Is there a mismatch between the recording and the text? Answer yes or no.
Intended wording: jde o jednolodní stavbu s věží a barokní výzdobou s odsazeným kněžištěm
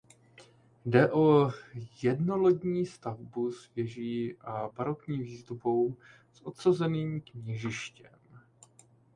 no